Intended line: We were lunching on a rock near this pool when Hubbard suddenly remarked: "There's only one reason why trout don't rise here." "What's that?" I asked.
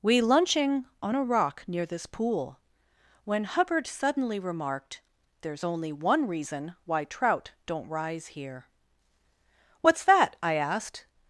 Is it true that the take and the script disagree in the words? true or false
true